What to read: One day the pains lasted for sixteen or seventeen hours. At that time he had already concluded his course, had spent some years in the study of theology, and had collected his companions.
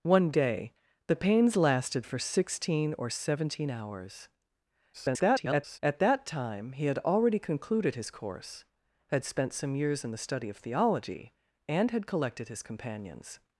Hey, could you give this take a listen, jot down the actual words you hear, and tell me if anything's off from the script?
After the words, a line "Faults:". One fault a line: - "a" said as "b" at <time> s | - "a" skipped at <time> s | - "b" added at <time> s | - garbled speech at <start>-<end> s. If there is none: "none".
One day the pains lasted for sixteen or seventeen hours. [garbled] At that time he had already concluded his course, had spent some years in the study of theology, and had collected his companions.
Faults:
- garbled speech at 4.9-5.8 s